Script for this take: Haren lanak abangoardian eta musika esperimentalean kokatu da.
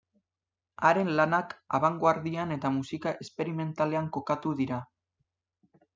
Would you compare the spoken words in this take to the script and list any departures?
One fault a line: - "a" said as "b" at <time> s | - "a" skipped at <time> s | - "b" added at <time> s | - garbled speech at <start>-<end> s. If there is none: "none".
- "da" said as "dira" at 4.6 s